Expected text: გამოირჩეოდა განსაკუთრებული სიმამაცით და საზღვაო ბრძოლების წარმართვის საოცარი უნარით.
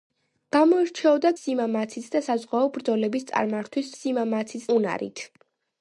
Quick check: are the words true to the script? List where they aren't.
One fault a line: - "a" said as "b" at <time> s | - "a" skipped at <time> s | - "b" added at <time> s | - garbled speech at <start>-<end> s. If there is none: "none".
- "განსაკუთრებული" skipped at 1.3 s
- "საოცარი" said as "სიმამაცით" at 3.9 s